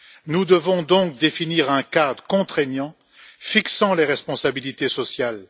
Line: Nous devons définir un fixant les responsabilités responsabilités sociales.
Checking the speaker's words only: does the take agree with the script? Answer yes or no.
no